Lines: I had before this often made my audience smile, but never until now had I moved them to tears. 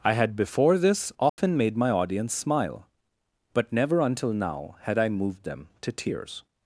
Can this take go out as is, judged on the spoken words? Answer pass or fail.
pass